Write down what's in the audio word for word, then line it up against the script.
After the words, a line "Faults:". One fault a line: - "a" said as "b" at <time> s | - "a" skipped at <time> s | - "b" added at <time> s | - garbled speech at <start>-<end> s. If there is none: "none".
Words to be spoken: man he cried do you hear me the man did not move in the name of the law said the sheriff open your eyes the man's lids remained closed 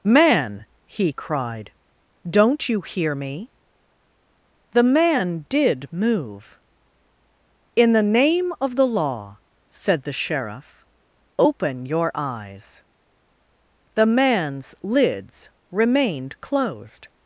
man he cried don't you hear me the man did move in the name of the law said the sheriff open your eyes the man's lids remained closed
Faults:
- "do" said as "don't" at 2.3 s
- "not" skipped at 5.9 s